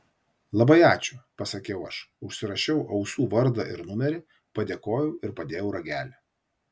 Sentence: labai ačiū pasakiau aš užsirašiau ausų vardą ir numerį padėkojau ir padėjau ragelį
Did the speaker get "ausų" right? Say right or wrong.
right